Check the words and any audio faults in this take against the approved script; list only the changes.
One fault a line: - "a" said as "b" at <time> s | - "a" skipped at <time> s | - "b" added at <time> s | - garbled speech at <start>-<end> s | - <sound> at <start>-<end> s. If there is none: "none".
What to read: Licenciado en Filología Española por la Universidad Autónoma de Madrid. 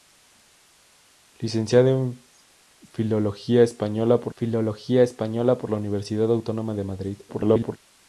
- "Filología Española por" added at 4.3 s
- garbled speech at 7.3-7.8 s